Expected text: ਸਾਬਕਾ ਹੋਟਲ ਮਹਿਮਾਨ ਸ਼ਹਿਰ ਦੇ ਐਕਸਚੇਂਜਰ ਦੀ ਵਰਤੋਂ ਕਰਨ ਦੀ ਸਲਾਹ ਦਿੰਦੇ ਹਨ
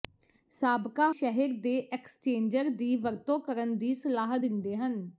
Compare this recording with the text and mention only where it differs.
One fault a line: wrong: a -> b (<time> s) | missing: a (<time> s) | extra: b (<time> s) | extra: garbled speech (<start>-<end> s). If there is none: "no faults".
missing: ਹੋਟਲ ਮਹਿਮਾਨ (1.1 s)